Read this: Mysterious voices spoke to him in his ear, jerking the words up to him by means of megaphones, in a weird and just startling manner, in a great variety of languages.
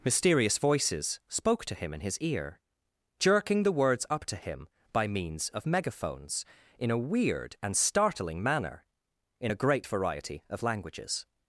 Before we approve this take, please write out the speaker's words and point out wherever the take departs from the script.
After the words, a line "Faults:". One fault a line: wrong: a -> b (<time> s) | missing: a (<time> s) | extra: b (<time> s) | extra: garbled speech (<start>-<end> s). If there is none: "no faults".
Mysterious voices spoke to him in his ear, jerking the words up to him by means of megaphones, in a weird and startling manner, in a great variety of languages.
Faults:
missing: just (7.8 s)